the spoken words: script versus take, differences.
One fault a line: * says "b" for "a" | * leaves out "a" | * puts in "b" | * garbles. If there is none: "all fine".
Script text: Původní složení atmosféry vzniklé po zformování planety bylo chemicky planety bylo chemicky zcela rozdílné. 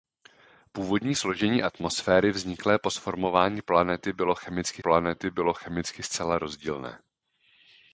all fine